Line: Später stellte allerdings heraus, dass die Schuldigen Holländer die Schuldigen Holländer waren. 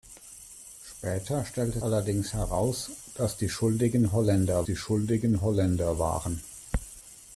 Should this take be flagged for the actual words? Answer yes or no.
no